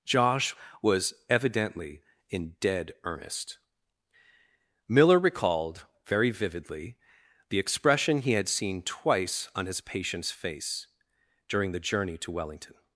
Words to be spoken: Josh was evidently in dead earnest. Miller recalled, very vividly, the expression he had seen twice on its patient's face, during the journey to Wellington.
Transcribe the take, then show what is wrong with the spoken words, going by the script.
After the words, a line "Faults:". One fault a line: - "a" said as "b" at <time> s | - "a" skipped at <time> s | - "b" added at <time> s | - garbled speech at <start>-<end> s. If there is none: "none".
Josh was evidently in dead earnest. Miller recalled, very vividly, the expression he had seen twice on his patient's face, during the journey to Wellington.
Faults:
- "its" said as "his" at 9.7 s